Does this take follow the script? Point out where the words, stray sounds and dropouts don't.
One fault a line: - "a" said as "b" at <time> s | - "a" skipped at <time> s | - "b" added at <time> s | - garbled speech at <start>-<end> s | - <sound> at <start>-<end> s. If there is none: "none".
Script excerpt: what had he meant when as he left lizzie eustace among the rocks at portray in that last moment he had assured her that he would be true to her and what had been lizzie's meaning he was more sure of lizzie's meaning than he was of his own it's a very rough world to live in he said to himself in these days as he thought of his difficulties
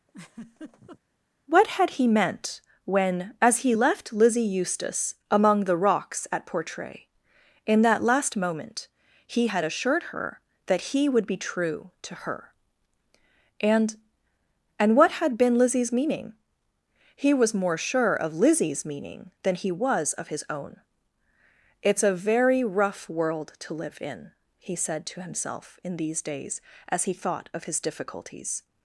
- laugh at 0.1-1.0 s
- "and" added at 14.8 s